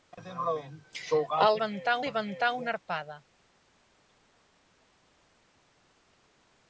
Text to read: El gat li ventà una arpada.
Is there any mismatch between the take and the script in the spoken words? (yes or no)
yes